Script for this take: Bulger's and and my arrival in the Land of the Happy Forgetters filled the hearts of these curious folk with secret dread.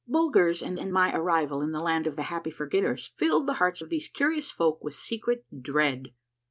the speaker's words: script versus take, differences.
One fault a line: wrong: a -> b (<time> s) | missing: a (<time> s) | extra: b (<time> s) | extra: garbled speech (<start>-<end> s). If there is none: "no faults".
no faults